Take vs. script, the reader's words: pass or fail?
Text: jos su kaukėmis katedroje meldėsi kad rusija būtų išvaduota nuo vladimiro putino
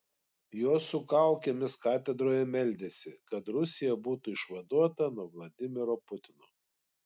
pass